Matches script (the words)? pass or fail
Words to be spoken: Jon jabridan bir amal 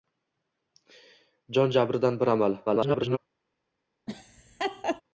fail